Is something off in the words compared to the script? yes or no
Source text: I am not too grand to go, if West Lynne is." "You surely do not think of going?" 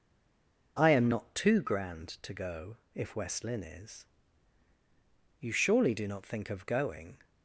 no